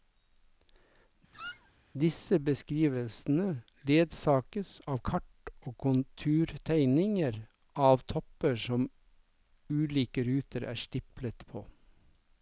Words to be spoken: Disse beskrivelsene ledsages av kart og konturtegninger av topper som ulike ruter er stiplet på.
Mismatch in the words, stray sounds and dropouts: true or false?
true